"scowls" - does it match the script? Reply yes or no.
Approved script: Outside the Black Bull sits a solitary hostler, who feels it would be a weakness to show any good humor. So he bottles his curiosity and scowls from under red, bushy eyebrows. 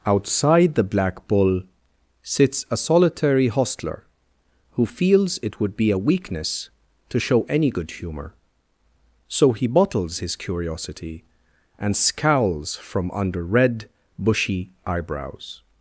yes